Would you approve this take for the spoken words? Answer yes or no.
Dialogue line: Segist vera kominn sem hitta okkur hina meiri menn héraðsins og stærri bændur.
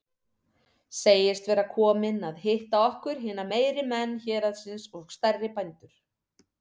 no